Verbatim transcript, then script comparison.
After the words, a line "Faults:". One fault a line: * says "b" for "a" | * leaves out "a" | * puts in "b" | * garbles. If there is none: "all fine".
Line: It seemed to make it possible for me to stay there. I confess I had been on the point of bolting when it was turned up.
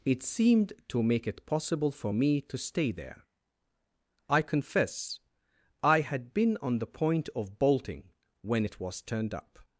It seemed to make it possible for me to stay there. I confess I had been on the point of bolting when it was turned up.
Faults:
all fine